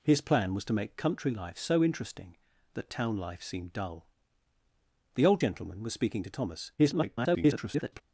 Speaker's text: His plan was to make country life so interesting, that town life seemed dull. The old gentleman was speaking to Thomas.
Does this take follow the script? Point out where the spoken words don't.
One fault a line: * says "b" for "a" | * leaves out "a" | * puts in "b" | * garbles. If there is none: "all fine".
* garbles